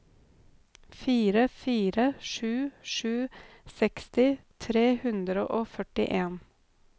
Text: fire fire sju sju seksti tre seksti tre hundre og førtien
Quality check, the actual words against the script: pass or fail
fail